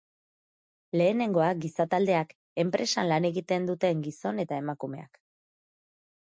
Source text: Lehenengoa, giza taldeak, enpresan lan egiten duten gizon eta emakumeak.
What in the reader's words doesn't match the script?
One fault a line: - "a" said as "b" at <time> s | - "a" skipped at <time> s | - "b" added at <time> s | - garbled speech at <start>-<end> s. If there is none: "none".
none